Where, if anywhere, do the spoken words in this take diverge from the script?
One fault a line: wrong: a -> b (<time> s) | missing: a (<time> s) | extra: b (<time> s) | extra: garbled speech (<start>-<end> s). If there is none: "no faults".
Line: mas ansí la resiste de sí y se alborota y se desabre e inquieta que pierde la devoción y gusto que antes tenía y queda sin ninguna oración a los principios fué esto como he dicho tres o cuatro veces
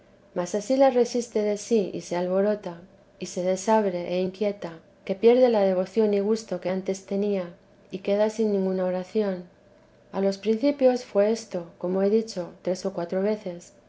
no faults